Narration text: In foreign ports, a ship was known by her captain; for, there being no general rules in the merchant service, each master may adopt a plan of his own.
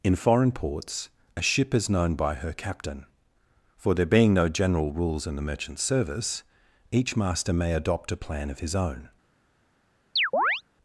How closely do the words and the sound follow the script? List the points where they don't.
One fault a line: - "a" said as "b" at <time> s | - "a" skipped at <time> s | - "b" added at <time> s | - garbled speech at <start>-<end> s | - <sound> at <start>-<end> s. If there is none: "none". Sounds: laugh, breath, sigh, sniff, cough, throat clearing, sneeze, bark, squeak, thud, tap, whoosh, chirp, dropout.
- "was" said as "is" at 1.8 s
- chirp at 10.2-10.6 s